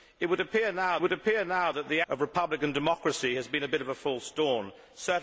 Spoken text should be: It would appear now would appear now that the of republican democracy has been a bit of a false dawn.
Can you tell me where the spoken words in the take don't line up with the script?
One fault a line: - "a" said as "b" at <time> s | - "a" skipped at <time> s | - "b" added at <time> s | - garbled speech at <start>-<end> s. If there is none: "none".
none